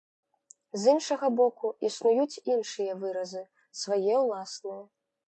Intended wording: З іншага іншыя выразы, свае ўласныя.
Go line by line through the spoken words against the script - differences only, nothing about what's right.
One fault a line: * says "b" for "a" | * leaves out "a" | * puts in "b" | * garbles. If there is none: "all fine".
* puts in "боку існуюць"